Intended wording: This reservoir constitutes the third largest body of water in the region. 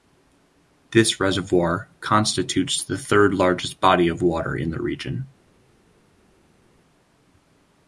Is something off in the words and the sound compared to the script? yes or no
no